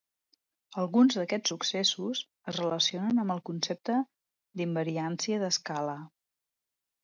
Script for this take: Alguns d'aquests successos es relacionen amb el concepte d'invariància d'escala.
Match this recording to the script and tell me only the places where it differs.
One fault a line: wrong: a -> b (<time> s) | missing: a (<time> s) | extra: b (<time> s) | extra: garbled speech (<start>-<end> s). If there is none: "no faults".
no faults